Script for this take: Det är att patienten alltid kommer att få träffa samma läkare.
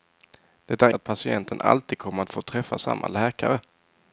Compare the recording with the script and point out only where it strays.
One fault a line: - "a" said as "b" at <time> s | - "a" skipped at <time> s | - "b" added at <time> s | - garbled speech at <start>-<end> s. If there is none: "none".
none